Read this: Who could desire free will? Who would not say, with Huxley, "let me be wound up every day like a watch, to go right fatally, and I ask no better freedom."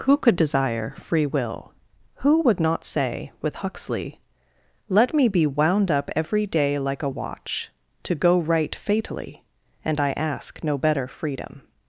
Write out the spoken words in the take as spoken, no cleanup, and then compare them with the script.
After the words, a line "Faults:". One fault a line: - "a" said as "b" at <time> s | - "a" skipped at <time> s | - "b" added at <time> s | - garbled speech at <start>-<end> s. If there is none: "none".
Who could desire free will? Who would not say, with Huxley, "let me be wound up every day like a watch, to go right fatally, and I ask no better freedom."
Faults:
none